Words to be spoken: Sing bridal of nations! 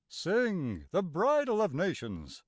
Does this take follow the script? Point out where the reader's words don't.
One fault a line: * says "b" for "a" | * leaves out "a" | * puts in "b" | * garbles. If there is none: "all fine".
* puts in "the"